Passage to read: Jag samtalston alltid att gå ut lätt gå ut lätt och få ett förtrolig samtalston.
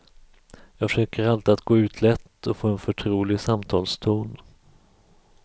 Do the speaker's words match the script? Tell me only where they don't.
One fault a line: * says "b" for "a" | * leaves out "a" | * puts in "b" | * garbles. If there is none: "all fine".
* says "försöker" for "samtalston"
* leaves out "gå ut lätt"
* says "en" for "ett"